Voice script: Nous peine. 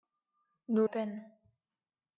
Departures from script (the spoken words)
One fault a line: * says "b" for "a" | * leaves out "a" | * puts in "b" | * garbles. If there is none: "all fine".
all fine